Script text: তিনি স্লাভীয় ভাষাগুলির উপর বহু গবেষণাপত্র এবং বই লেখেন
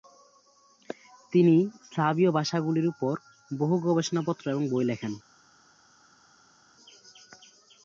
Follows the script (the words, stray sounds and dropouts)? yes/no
yes